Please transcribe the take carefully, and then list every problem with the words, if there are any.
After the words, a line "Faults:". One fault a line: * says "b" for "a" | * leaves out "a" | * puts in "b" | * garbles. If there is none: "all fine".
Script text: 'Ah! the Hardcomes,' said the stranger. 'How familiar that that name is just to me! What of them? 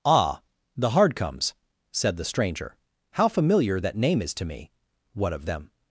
'Ah! the Hardcomes,' said the stranger. 'How familiar that name is to me! What of them?
Faults:
* leaves out "that"
* leaves out "just"